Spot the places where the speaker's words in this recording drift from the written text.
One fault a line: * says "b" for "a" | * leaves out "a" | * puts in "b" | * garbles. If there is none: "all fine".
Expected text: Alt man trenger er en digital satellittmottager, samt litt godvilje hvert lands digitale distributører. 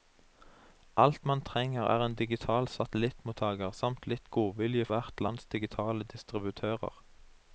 all fine